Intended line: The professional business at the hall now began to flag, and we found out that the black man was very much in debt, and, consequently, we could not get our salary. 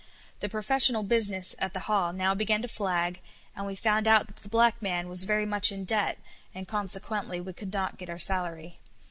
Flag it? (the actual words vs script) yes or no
no